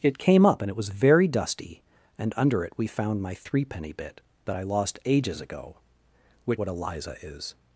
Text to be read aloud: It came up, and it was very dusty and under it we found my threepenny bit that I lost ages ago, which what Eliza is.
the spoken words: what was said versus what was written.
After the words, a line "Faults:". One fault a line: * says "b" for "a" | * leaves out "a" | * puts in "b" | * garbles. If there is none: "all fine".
It came up, and it was very dusty and under it we found my threepenny bit that I lost ages ago, which what Eliza is.
Faults:
all fine